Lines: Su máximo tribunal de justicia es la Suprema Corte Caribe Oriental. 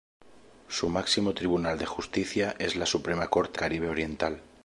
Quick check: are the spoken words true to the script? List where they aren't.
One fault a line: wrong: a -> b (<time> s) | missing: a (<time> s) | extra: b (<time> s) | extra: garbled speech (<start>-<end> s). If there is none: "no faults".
no faults